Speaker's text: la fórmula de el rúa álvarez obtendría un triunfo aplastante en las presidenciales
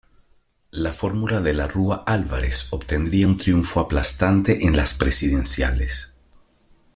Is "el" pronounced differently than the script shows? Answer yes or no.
yes